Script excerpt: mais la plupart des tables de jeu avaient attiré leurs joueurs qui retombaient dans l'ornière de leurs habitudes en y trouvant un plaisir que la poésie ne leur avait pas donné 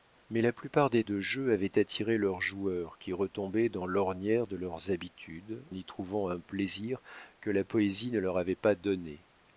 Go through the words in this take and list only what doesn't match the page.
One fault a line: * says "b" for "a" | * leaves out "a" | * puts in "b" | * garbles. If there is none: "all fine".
* leaves out "tables"
* leaves out "en"